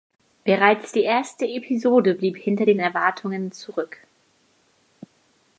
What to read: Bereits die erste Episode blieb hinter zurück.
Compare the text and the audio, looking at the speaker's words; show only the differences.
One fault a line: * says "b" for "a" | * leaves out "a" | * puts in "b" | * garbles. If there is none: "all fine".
* puts in "den Erwartungen"